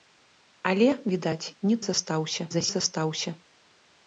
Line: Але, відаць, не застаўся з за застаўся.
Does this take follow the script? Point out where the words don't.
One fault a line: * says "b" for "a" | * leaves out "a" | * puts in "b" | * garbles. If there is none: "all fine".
all fine